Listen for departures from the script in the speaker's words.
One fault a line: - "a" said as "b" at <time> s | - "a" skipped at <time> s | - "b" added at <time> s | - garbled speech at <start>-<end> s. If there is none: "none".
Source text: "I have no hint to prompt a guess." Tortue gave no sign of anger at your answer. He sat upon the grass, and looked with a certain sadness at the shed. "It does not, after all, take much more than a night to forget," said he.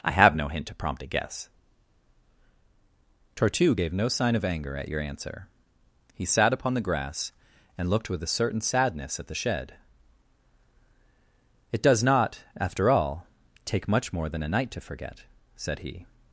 none